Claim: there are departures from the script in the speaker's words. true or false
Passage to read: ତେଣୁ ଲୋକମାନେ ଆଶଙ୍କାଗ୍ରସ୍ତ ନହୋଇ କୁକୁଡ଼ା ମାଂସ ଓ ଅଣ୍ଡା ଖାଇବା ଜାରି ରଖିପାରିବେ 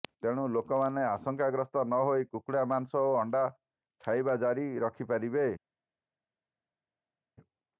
false